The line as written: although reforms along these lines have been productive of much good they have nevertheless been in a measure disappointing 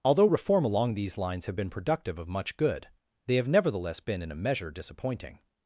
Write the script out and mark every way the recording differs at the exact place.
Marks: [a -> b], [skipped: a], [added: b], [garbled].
although [reforms -> reform] along these lines have been productive of much good they have nevertheless been in a measure disappointing